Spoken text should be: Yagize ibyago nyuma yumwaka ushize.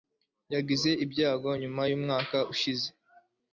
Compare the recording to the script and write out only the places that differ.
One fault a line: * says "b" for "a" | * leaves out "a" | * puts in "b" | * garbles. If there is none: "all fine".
all fine